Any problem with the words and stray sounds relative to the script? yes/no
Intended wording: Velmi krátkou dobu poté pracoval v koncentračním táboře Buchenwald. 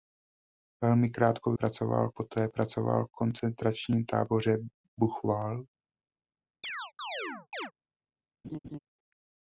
yes